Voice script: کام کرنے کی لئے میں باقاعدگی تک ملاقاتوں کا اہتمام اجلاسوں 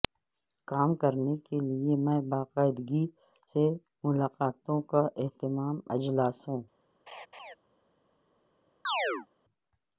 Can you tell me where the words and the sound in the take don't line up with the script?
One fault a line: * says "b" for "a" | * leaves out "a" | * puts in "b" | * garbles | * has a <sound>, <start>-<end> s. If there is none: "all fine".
* says "کے" for "کی"
* says "سے" for "تک"
* has a laugh, 7.1-7.5 s
* has a chirp, 8.8-9.3 s